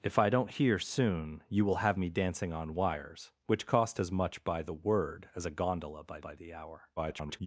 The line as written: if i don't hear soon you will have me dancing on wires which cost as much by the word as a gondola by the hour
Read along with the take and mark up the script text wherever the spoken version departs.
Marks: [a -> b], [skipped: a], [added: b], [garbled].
if i don't hear soon you will have me dancing on wires which cost as much by the word as a gondola by [added: by] the hour [garbled]